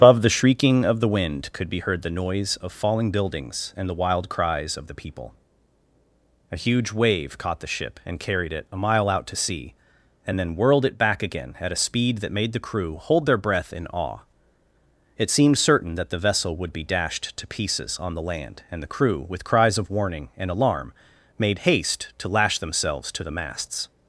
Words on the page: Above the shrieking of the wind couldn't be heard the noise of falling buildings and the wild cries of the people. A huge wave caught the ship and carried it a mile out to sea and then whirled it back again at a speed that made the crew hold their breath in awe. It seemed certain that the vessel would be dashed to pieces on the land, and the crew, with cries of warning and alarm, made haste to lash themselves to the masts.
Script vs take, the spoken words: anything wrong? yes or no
yes